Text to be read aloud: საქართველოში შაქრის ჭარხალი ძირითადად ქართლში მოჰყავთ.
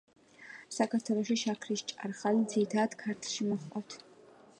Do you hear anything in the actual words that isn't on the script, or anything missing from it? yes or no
no